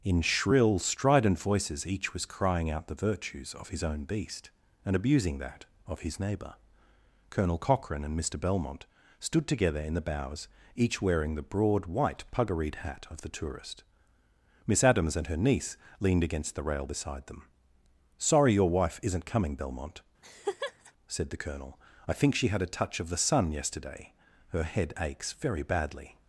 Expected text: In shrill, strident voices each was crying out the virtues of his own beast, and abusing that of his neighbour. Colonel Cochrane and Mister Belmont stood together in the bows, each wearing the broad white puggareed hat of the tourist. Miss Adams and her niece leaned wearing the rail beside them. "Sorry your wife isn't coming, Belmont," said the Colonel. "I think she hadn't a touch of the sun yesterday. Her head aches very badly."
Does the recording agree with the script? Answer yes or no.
no